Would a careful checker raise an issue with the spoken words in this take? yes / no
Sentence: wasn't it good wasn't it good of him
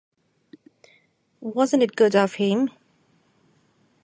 yes